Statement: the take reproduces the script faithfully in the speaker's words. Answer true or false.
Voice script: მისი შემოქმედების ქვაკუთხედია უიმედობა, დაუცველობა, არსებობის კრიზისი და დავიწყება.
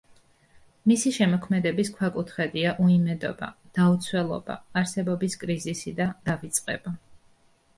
true